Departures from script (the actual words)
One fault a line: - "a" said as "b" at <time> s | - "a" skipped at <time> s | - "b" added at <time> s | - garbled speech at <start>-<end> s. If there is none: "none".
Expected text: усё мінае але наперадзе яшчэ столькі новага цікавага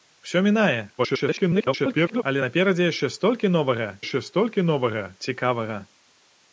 - garbled speech at 1.0-2.2 s
- "яшчэ столькі новага" added at 4.0 s